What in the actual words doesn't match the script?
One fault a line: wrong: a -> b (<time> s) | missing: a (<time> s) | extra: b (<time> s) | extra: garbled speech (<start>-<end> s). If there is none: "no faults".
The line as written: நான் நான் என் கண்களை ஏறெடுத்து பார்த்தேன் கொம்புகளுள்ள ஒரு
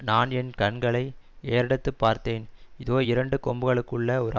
missing: நான் (0.3 s)
extra: இதோ இரண்டு (2.8 s)